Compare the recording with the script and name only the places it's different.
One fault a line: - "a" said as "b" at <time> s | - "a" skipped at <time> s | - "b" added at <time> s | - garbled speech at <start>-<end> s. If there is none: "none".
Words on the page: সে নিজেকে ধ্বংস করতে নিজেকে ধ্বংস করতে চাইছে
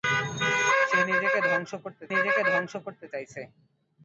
none